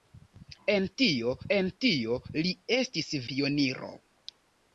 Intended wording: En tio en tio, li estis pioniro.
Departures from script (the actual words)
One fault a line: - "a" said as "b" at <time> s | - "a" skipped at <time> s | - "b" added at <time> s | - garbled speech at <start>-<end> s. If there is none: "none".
none